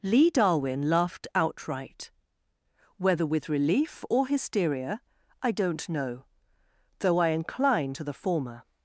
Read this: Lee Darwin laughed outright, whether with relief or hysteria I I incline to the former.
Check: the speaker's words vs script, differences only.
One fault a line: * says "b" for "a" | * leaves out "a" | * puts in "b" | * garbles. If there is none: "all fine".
* puts in "don't know though"